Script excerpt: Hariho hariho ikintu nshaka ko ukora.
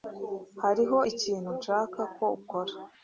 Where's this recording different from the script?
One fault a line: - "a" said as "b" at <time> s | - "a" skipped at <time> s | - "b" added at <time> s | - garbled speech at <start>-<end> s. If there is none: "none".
- "hariho" skipped at 1.0 s